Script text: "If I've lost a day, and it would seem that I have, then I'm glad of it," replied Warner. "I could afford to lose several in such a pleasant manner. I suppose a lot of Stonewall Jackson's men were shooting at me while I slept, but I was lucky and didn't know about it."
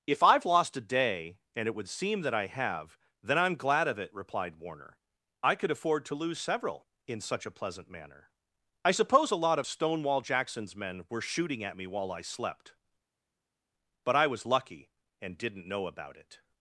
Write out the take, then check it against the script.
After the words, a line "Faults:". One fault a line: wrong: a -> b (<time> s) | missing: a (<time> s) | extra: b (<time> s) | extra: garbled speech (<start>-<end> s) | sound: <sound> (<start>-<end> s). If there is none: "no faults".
"If I've lost a day, and it would seem that I have, then I'm glad of it," replied Warner. "I could afford to lose several in such a pleasant manner. I suppose a lot of Stonewall Jackson's men were shooting at me while I slept, but I was lucky and didn't know about it."
Faults:
no faults